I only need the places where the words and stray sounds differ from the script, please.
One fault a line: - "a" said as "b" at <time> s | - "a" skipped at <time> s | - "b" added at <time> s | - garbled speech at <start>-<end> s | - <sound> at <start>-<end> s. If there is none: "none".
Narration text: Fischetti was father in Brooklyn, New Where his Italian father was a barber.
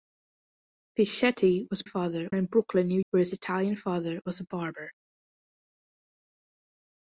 none